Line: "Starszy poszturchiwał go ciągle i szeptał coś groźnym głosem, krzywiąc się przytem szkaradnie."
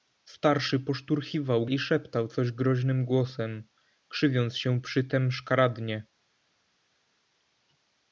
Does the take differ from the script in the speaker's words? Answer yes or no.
yes